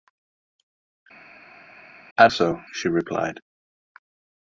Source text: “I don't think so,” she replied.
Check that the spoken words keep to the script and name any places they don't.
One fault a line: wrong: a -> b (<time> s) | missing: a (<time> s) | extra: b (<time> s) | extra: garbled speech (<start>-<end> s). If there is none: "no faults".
missing: don't think (2.3 s)